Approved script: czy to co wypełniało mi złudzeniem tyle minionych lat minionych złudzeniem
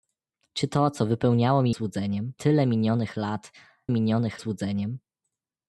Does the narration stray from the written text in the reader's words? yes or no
no